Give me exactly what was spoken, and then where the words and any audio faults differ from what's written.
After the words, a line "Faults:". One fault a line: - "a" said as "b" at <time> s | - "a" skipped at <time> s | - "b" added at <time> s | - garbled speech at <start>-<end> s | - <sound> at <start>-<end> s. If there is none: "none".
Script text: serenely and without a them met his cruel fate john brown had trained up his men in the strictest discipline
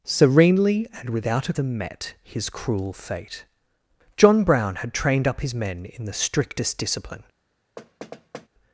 serenely and without a them met his cruel fate john brown had trained up his men in the strictest discipline
Faults:
- thud at 7.8-8.5 s